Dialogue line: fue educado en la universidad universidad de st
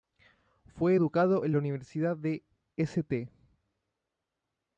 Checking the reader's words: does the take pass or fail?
fail